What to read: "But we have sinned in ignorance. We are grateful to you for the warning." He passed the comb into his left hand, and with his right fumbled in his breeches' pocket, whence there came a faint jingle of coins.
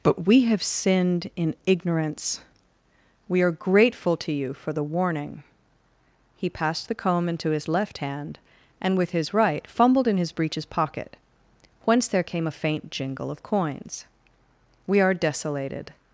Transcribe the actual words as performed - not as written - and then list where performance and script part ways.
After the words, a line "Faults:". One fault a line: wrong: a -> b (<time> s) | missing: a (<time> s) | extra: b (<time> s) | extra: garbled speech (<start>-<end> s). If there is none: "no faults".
"But we have sinned in ignorance. We are grateful to you for the warning." He passed the comb into his left hand, and with his right fumbled in his breeches' pocket, whence there came a faint jingle of coins. "We are desolated
Faults:
extra: We are desolated (14.9 s)